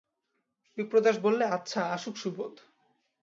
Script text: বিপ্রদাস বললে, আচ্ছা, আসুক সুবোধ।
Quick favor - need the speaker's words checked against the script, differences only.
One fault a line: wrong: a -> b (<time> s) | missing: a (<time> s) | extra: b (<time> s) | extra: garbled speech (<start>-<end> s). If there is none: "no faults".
no faults